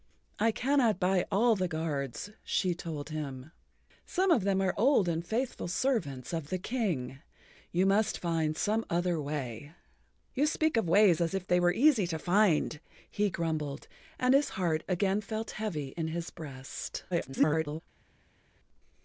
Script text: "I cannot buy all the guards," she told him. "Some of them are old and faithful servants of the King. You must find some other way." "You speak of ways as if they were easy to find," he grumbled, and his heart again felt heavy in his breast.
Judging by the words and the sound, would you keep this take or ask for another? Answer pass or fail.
fail